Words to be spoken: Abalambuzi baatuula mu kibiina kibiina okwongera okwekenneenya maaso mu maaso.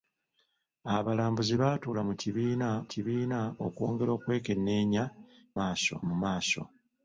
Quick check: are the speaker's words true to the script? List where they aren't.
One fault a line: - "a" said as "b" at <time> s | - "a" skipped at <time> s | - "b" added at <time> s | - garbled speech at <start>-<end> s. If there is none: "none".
none